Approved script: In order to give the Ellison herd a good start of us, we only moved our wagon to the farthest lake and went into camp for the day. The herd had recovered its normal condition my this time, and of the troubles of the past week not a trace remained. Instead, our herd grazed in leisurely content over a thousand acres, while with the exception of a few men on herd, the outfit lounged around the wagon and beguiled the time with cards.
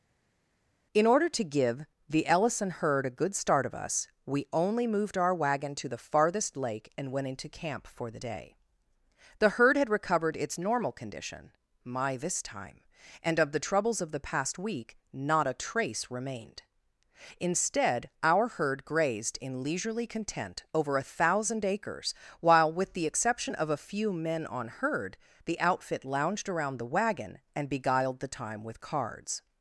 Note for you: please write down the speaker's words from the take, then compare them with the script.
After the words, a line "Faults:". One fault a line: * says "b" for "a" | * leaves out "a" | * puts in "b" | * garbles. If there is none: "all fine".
In order to give the Ellison herd a good start of us, we only moved our wagon to the farthest lake and went into camp for the day. The herd had recovered its normal condition my this time, and of the troubles of the past week not a trace remained. Instead, our herd grazed in leisurely content over a thousand acres, while with the exception of a few men on herd, the outfit lounged around the wagon and beguiled the time with cards.
Faults:
all fine